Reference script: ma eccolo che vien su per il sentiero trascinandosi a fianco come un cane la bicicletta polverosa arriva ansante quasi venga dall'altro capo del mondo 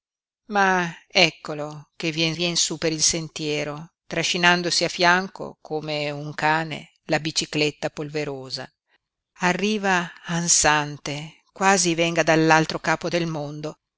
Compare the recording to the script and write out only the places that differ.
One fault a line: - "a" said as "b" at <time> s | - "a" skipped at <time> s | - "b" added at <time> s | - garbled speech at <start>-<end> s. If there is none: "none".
- "vien" added at 2.3 s